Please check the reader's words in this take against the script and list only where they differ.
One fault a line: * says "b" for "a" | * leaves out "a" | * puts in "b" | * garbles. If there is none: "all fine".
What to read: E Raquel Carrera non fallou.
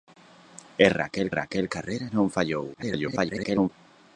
* puts in "Raquel"
* garbles